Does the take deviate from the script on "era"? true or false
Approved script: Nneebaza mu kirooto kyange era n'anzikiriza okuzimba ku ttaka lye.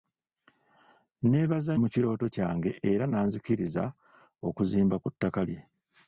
false